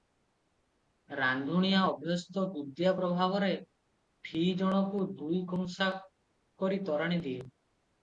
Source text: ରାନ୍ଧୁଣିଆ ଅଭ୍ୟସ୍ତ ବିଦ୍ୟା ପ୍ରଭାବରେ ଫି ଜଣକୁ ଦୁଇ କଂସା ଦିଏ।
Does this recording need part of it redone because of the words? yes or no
yes